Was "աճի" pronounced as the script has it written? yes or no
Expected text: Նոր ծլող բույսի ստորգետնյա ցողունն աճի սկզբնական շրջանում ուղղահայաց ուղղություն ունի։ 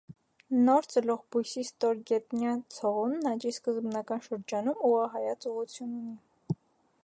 yes